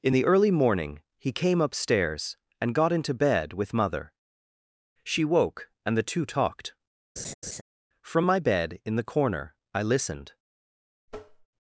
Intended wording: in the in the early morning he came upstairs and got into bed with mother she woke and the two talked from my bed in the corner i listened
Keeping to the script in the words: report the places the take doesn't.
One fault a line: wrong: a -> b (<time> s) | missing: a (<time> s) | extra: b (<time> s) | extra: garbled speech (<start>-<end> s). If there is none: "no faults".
missing: in the (0.2 s)